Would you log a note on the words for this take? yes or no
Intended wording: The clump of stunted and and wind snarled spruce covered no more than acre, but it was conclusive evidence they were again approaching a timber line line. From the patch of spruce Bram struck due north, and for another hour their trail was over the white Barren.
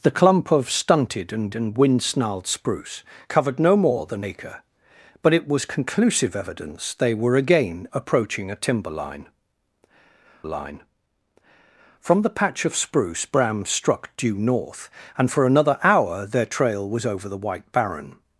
no